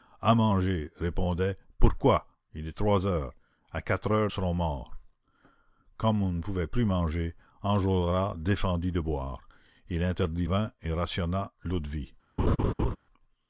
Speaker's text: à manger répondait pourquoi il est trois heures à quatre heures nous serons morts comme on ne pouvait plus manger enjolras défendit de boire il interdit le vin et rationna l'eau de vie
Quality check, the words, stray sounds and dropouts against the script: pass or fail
fail